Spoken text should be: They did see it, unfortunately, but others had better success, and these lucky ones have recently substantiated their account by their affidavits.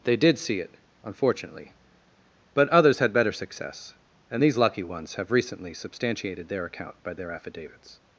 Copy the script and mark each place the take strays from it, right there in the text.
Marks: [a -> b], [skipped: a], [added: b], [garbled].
They did see it, unfortunately, but others had better success, and these lucky ones have recently substantiated their account by their affidavits.